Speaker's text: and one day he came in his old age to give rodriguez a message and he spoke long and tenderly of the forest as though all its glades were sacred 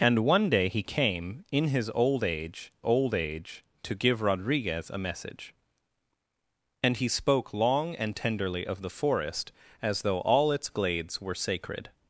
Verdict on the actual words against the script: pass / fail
fail